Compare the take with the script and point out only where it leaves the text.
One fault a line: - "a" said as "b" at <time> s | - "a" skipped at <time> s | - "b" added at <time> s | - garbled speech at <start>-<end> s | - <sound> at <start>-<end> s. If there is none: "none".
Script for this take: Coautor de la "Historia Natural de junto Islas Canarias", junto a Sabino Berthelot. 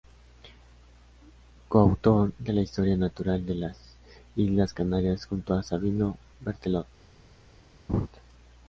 - "junto" said as "las" at 3.5 s
- laugh at 7.9-8.1 s